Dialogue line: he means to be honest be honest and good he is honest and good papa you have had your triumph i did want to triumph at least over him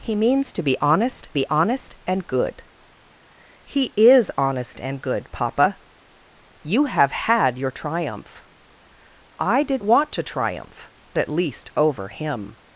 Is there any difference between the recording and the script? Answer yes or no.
no